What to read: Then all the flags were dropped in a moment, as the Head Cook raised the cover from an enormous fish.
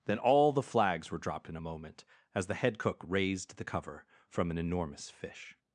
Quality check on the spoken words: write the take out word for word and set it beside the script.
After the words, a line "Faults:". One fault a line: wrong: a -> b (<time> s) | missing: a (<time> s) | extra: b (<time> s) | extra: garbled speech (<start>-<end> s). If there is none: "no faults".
Then all the flags were dropped in a moment, as the Head Cook raised the cover from an enormous fish.
Faults:
no faults